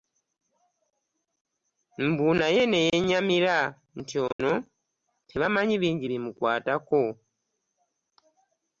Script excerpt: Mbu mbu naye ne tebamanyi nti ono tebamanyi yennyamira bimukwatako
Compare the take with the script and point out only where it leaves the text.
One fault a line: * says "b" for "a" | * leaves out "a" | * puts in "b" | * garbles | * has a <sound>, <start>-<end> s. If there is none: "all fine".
* leaves out "mbu"
* says "yennyamira" for "tebamanyi"
* has a dropout, 4.3-4.4 s
* says "bingi" for "yennyamira"